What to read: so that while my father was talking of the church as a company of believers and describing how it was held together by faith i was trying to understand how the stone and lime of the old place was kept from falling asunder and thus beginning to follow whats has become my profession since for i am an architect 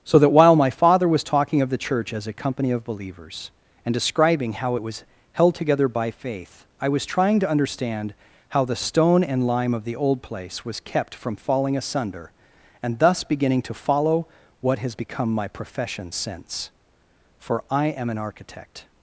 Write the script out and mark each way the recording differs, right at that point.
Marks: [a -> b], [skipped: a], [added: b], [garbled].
so that while my father was talking of the church as a company of believers and describing how it was held together by faith i was trying to understand how the stone and lime of the old place was kept from falling asunder and thus beginning to follow [whats -> what] has become my profession since for i am an architect